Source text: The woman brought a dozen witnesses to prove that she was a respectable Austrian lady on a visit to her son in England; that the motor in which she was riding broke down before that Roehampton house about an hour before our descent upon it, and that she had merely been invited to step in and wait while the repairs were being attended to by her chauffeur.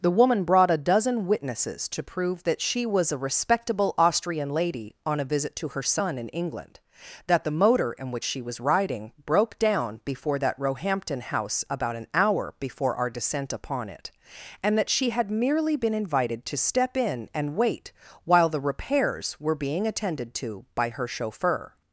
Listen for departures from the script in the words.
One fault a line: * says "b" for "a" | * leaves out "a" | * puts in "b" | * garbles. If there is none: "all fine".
all fine